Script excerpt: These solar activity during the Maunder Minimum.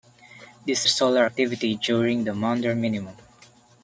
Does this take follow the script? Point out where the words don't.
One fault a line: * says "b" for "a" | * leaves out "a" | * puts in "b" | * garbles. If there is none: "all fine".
all fine